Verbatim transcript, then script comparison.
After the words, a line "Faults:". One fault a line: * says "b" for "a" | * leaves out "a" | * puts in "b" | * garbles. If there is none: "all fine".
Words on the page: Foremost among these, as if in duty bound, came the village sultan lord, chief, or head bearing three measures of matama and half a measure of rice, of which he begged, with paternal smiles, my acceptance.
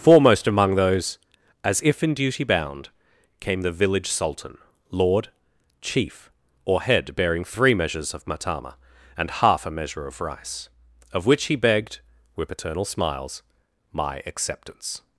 Foremost among those, as if in duty bound, came the village sultan lord, chief, or head bearing three measures of matama and half a measure of rice, of which he begged, with paternal smiles, my acceptance.
Faults:
* says "those" for "these"